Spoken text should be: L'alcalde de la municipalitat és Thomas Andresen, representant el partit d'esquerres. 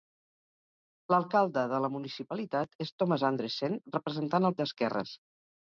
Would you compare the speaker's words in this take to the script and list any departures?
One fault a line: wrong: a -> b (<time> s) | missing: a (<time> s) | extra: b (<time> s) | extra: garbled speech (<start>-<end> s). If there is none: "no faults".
missing: partit (4.6 s)